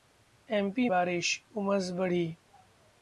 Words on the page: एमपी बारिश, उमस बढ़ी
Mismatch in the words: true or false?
false